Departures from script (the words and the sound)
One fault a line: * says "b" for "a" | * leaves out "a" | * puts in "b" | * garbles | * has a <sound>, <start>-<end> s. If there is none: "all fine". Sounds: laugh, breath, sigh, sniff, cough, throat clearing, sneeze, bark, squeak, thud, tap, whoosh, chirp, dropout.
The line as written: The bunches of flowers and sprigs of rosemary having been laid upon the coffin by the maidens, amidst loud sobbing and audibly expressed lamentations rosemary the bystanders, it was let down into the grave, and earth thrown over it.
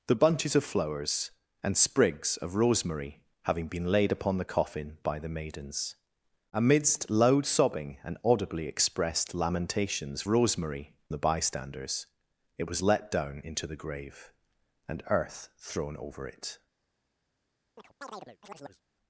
* has a chirp, 17.8-18.8 s